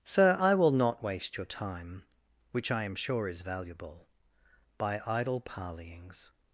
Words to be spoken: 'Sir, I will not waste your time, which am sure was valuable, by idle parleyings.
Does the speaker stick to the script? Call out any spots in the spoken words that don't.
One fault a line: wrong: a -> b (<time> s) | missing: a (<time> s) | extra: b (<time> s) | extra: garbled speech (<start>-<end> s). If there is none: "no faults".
extra: I (2.7 s)
wrong: was -> is (3.3 s)